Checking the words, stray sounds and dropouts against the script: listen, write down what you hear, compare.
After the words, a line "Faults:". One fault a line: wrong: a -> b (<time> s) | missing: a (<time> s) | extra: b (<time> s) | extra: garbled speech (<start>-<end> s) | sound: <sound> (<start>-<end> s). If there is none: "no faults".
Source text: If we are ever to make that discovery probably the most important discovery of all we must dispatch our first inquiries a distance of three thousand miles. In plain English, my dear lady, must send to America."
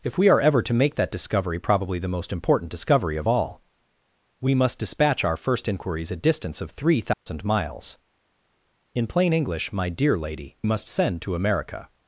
If we are ever to make that discovery probably the most important discovery of all we must dispatch our first inquiries a distance of three thousand miles. In plain English, my dear lady, must send to America."
Faults:
sound: dropout (7.1-7.3 s)